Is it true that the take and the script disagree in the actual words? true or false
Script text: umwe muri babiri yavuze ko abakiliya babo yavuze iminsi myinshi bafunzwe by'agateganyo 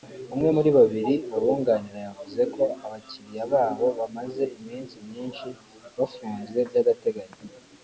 true